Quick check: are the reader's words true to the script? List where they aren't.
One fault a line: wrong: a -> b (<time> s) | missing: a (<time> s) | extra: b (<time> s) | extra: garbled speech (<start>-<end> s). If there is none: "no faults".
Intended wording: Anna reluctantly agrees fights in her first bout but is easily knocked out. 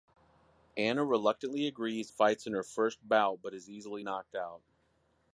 no faults